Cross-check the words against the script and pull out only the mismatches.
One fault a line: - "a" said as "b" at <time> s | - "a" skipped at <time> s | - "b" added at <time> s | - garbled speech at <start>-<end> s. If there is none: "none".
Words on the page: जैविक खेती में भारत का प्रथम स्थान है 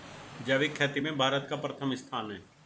none